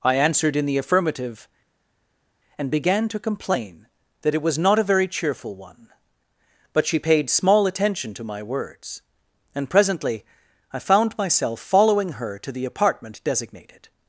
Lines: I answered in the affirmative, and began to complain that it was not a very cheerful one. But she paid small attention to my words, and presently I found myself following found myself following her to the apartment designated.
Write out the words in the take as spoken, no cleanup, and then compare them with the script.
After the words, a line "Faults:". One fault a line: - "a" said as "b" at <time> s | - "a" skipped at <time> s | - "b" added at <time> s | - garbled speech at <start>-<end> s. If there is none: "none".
I answered in the affirmative, and began to complain that it was not a very cheerful one. But she paid small attention to my words, and presently I found myself following her to the apartment designated.
Faults:
- "found myself following" skipped at 12.1 s